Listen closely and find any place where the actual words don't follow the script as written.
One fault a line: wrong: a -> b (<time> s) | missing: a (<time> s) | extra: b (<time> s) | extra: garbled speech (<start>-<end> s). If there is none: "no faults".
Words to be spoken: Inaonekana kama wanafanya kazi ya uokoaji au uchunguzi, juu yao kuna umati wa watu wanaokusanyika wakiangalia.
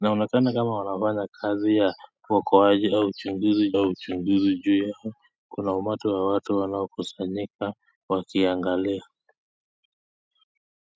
extra: au uchunguzi (3.8 s)